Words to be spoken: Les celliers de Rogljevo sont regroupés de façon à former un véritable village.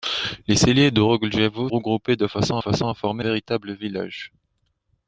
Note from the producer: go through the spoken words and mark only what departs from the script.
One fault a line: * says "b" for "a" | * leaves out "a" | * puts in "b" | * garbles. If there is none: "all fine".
* leaves out "sont"
* puts in "façon"
* leaves out "un"